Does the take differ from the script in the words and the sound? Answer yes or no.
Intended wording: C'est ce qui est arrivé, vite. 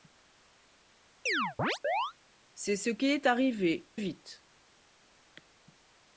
yes